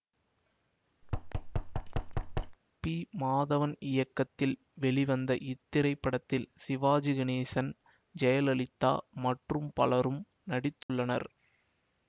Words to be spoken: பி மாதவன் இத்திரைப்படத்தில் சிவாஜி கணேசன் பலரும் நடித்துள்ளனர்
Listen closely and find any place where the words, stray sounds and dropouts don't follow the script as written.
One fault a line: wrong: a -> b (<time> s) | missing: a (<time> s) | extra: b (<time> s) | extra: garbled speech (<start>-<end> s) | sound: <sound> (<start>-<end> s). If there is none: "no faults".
sound: thud (1.0-2.6 s)
extra: இயக்கத்தில் வெளிவந்த (3.9 s)
extra: ஜெயலலிதா மற்றும் (8.2 s)
sound: dropout (10.8-10.9 s)